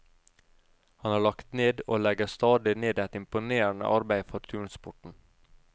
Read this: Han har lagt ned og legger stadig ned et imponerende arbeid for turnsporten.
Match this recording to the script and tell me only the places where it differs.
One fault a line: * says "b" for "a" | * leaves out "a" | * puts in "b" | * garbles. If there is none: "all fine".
all fine